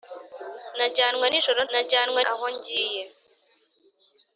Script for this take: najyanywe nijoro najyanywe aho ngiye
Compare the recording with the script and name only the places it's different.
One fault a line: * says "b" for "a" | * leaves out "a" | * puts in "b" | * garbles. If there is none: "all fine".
all fine